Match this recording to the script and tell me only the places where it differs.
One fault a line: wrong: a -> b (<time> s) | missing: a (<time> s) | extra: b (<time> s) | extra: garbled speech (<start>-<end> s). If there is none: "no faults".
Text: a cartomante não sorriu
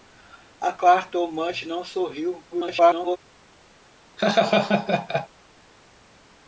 extra: garbled speech (2.5-3.2 s)